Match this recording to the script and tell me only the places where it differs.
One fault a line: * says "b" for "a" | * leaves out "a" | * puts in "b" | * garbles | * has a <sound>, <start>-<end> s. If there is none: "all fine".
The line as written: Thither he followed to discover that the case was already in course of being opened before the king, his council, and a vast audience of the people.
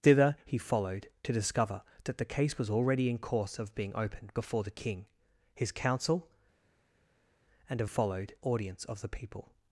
* says "followed" for "vast"